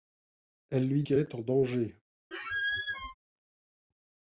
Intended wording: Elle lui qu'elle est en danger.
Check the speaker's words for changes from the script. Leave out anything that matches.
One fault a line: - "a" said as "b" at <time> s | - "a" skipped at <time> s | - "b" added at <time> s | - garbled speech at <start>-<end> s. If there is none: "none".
none